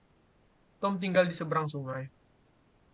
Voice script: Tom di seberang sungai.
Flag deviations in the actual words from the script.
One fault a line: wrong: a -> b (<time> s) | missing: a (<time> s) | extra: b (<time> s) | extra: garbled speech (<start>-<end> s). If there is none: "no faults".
extra: tinggal (1.0 s)